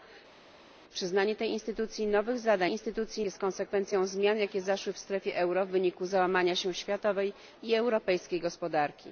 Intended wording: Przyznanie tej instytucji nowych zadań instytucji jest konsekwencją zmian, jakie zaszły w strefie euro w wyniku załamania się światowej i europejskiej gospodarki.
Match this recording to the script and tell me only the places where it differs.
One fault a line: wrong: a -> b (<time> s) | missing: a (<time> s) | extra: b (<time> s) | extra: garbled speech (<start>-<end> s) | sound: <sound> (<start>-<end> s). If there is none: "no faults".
no faults